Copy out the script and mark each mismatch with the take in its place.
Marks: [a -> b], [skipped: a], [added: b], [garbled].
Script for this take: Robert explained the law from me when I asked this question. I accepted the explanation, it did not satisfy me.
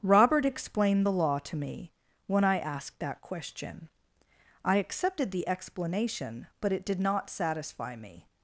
Robert explained the law [from -> to] me when I asked [this -> that] question. I accepted the explanation, [added: but] it did not satisfy me.